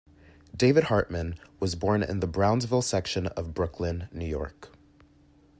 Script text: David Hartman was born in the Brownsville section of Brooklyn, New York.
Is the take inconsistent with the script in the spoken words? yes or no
no